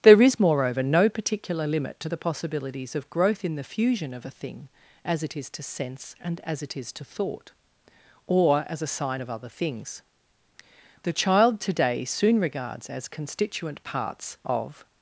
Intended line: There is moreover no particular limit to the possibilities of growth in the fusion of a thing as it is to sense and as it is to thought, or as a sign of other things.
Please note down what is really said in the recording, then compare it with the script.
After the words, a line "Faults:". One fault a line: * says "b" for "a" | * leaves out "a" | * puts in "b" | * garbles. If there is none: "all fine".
There is moreover no particular limit to the possibilities of growth in the fusion of a thing as it is to sense and as it is to thought, or as a sign of other things. The child today soon regards as constituent parts of
Faults:
* puts in "The child today soon regards as constituent parts of"